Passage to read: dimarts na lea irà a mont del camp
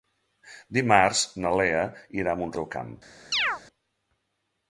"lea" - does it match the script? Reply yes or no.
yes